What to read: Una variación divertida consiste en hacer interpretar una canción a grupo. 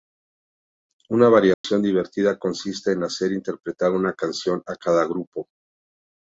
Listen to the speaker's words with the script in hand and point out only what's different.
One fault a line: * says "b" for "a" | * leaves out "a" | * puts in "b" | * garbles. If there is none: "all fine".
* puts in "cada"